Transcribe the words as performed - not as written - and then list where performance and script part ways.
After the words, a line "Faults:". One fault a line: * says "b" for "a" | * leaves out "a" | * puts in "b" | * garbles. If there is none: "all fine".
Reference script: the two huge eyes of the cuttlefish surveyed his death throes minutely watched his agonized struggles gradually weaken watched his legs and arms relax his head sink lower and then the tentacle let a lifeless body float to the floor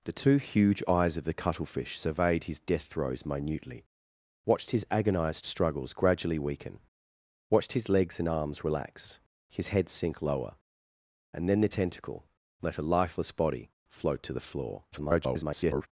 the two huge eyes of the cuttlefish surveyed his death throes minutely watched his agonized struggles gradually weaken watched his legs and arms relax his head sink lower and then the tentacle let a lifeless body float to the floor [garbled]
Faults:
* garbles